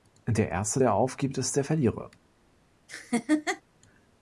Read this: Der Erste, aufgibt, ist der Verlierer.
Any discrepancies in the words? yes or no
yes